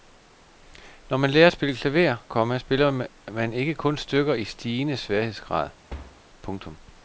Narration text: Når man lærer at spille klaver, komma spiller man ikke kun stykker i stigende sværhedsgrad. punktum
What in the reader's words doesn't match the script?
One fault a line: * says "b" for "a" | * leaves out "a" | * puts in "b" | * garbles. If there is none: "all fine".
all fine